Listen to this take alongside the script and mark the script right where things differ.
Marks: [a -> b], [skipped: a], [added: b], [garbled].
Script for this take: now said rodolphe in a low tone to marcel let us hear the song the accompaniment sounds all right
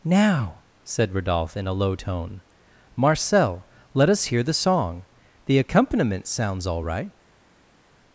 now said rodolphe in a low tone [skipped: to] marcel let us hear the song the accompaniment sounds all right